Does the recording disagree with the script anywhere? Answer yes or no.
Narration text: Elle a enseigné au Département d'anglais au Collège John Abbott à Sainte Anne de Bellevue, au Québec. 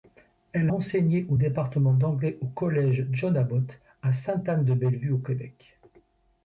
yes